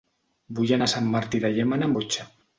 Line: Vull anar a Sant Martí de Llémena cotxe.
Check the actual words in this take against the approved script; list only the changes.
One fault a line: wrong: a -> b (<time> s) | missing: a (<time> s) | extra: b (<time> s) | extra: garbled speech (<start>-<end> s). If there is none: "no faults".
no faults